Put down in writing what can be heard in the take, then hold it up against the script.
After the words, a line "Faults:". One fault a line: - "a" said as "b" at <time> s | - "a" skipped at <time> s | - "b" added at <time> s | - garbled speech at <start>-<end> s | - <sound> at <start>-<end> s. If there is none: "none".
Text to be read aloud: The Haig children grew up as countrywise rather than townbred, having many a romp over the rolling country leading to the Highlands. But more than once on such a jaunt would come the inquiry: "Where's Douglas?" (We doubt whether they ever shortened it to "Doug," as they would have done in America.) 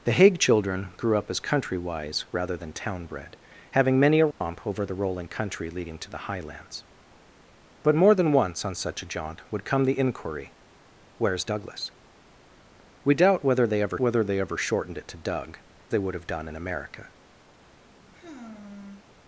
The Haig children grew up as countrywise rather than townbred, having many a romp over the rolling country leading to the Highlands. But more than once on such a jaunt would come the inquiry: "Where's Douglas?" (We doubt whether they ever whether they ever shortened it to "Doug," they would have done in America.)
Faults:
- dropout at 4.3-4.4 s
- "whether they ever" added at 14.0 s
- "as" skipped at 15.6 s
- sigh at 17.5-19.0 s